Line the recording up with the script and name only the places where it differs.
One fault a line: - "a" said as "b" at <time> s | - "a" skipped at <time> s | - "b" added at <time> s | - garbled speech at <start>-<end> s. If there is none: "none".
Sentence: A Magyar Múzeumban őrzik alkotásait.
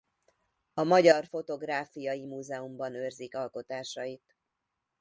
- "Fotográfiai" added at 1.2 s